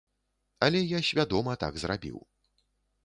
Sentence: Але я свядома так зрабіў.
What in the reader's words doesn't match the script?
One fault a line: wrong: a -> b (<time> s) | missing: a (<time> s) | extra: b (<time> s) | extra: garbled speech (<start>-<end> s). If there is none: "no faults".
no faults